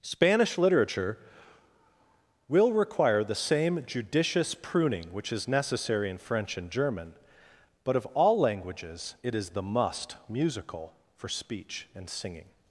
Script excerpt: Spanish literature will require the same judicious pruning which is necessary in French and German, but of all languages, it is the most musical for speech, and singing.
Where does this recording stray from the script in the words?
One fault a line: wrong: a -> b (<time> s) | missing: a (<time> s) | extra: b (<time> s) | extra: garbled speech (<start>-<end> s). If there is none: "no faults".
wrong: most -> must (9.6 s)